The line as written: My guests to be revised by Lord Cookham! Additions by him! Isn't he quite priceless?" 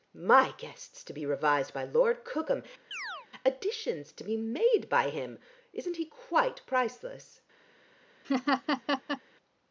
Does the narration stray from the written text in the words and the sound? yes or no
yes